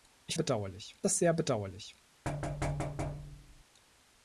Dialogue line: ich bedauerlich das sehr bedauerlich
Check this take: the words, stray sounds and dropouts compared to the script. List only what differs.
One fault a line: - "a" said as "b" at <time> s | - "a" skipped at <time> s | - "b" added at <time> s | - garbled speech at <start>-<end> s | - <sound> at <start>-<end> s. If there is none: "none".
- thud at 2.2-3.6 s